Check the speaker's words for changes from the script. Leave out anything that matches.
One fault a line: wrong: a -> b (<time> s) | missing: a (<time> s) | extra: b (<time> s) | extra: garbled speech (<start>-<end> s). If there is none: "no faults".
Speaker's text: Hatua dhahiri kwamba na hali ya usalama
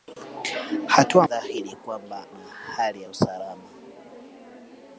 no faults